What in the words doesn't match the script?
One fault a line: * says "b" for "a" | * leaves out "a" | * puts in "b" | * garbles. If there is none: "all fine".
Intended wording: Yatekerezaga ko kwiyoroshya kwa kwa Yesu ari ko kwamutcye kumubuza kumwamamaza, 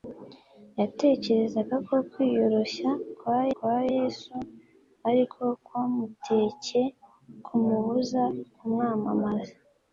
all fine